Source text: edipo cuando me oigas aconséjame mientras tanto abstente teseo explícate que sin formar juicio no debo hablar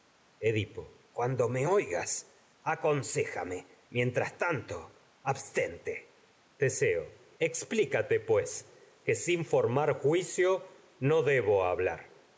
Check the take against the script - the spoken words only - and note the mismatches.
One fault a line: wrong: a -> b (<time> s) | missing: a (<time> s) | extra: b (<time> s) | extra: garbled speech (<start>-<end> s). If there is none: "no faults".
extra: pues (8.2 s)